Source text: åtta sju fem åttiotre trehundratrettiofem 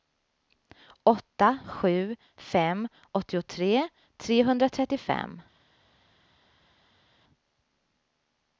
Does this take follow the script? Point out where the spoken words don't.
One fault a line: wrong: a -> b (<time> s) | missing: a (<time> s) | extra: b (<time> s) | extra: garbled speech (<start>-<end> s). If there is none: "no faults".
no faults